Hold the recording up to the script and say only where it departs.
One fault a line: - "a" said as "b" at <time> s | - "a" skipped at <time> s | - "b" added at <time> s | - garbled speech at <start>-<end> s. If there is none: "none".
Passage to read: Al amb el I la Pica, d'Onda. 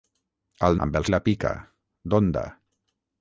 none